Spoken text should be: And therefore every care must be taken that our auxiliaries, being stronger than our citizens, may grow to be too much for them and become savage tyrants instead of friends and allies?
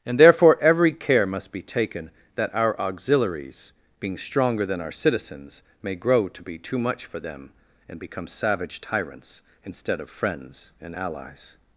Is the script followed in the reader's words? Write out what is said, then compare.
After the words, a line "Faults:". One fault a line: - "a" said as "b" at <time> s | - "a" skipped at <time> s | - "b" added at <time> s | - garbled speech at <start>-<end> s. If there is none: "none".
And therefore every care must be taken that our auxiliaries, being stronger than our citizens, may grow to be too much for them and become savage tyrants instead of friends and allies?
Faults:
none